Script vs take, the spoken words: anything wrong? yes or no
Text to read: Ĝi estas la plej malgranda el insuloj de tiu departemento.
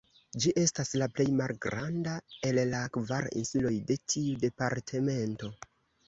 yes